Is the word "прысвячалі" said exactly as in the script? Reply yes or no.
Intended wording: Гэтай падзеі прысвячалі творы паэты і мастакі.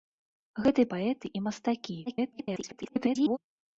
no